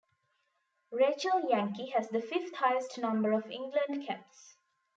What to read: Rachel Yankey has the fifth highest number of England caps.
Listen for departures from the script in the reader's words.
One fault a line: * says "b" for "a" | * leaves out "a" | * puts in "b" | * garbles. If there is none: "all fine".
all fine